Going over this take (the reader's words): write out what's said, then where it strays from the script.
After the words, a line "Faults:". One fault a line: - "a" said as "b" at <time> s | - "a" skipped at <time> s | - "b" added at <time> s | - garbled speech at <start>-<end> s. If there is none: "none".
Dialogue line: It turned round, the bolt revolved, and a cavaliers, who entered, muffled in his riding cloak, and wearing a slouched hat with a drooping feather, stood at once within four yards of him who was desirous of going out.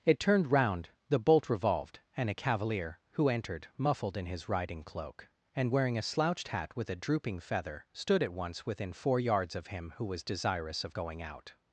It turned round, the bolt revolved, and a cavalier, who entered, muffled in his riding cloak, and wearing a slouched hat with a drooping feather, stood at once within four yards of him who was desirous of going out.
Faults:
- "cavaliers" said as "cavalier" at 2.3 s